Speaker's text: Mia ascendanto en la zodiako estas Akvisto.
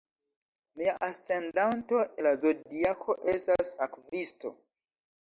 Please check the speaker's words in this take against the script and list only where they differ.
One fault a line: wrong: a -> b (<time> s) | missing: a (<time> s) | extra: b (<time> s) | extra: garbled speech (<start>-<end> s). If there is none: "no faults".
missing: en (2.0 s)